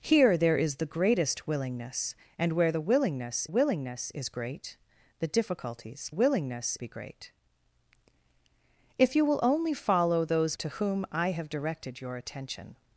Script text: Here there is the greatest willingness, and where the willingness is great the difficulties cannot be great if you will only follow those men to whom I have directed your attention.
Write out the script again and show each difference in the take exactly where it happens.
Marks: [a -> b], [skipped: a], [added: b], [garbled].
Here there is the greatest willingness, and where the willingness [added: willingness] is great the difficulties [cannot -> willingness] be great if you will only follow those [skipped: men] to whom I have directed your attention.